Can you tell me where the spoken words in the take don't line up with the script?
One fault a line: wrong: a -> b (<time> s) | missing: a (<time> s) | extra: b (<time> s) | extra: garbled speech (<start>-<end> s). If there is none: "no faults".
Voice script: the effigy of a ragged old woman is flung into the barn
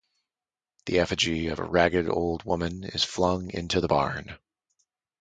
no faults